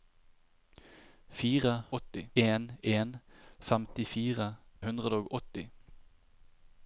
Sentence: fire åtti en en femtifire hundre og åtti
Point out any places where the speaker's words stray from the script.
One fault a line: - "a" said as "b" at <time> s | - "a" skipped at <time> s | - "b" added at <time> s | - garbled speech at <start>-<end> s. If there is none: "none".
none